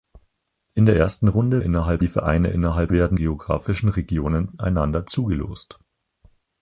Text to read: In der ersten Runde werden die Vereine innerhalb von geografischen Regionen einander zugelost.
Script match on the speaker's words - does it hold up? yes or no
no